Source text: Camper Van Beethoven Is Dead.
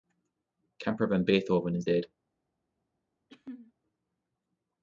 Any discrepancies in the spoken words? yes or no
no